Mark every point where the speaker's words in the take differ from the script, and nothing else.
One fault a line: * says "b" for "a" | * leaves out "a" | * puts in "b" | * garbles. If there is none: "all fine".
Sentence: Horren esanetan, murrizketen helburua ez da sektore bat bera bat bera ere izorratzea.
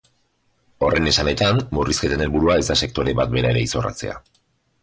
* leaves out "bat bera"